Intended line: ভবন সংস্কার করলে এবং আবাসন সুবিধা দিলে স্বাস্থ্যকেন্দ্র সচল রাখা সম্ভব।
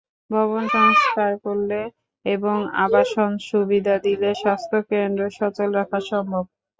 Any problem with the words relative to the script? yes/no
no